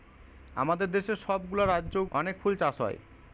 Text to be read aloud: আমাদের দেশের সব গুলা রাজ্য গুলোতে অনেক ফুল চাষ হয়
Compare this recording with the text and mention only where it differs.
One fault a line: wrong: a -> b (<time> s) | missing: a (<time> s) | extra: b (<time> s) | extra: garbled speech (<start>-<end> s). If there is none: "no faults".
missing: গুলোতে (1.9 s)